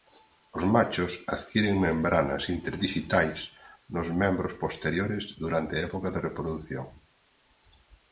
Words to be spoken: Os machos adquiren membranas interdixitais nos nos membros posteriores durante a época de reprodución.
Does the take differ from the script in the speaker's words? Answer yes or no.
yes